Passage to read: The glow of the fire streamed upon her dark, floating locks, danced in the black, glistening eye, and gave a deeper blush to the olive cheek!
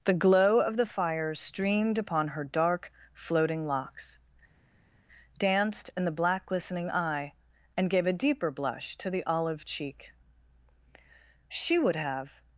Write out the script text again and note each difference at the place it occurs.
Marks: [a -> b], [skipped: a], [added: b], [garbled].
The glow of the fire streamed upon her dark, floating locks, danced in the black, glistening eye, and gave a deeper blush to the olive cheek! [added: She would have]